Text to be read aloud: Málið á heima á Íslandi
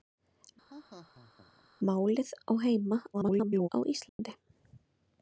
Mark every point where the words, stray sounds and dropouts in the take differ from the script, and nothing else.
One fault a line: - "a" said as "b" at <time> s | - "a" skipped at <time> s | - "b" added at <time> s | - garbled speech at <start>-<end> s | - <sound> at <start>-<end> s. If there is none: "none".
- laugh at 0.7-1.7 s
- garbled speech at 3.1-3.7 s
- dropout at 4.1-4.2 s